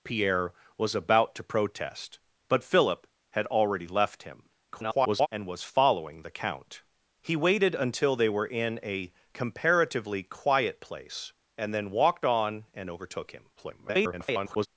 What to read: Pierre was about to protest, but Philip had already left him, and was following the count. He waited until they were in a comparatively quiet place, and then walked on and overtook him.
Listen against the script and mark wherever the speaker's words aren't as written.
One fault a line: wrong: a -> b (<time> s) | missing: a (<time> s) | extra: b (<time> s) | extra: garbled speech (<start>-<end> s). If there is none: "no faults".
extra: garbled speech (4.7-5.3 s)
extra: garbled speech (13.6-14.7 s)